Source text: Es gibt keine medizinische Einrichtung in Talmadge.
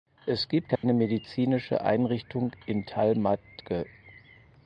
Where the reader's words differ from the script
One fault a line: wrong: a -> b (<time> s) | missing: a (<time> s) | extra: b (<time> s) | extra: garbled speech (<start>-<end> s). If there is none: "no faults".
no faults